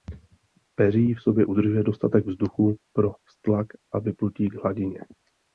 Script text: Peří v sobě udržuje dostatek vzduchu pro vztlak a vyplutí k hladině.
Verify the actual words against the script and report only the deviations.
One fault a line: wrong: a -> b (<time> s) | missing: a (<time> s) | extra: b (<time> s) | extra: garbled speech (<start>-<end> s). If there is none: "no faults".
no faults